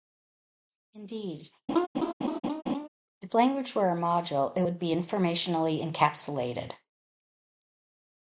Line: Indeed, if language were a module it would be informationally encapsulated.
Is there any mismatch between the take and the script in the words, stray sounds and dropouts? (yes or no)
yes